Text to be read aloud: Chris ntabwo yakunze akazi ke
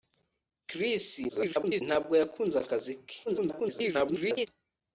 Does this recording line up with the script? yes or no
no